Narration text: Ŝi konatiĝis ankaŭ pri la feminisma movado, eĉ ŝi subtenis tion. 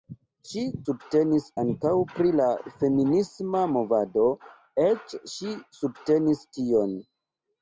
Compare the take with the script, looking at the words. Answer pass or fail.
fail